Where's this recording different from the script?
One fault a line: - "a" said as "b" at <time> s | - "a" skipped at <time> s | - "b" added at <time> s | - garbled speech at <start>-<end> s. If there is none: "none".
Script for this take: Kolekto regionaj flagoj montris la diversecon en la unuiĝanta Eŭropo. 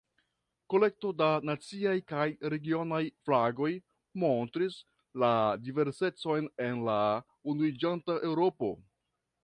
- "da naciaj kaj" added at 1.2 s